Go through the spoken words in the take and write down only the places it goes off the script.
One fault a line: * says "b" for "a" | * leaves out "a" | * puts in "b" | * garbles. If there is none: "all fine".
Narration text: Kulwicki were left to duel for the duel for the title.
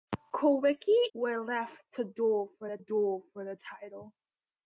all fine